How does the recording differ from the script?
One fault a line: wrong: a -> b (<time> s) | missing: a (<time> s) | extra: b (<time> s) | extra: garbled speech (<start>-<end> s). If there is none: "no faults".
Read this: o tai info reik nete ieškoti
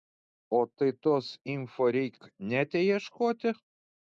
extra: tos (1.0 s)